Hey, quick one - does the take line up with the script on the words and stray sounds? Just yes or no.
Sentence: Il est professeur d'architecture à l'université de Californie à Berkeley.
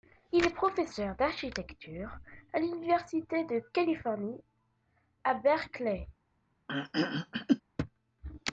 no